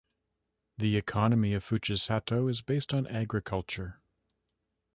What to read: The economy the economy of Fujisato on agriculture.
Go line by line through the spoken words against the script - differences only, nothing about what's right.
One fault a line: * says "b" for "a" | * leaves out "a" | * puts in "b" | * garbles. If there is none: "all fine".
* says "of Fujisato is based" for "the economy of Fujisato"